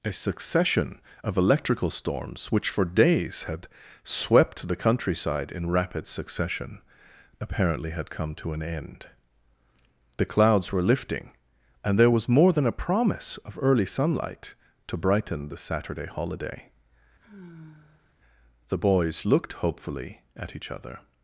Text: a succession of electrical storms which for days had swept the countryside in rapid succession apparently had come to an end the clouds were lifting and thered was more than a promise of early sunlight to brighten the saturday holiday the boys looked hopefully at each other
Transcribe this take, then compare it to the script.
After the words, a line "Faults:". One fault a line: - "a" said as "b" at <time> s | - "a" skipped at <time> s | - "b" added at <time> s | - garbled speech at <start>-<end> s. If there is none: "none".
a succession of electrical storms which for days had swept the countryside in rapid succession apparently had come to an end the clouds were lifting and there was more than a promise of early sunlight to brighten the saturday holiday the boys looked hopefully at each other
Faults:
- "thered" said as "there" at 12.0 s